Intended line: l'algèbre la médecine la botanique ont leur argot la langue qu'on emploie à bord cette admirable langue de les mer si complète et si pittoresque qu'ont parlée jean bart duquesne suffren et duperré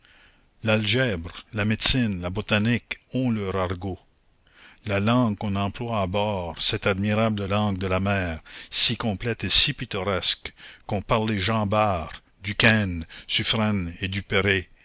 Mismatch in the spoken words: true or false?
true